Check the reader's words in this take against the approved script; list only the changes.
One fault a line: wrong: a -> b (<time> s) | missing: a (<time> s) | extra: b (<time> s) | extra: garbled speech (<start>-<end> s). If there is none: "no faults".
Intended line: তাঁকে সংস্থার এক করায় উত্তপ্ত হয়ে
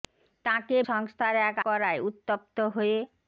no faults